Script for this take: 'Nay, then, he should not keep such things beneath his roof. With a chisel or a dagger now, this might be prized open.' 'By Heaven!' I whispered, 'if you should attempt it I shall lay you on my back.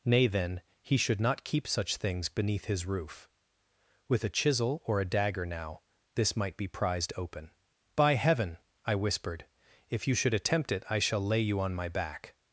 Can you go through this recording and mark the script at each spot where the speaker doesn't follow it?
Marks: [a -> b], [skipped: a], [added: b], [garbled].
'Nay, then, he should not keep such things beneath his roof. With a chisel or a dagger now, this might be prized open.' 'By Heaven!' I whispered, 'if you should attempt it I shall lay you on my back.